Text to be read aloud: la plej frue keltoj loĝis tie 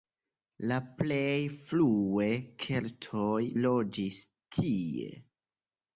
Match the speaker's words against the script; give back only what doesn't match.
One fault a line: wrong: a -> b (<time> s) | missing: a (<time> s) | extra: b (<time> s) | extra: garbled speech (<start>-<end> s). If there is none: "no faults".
no faults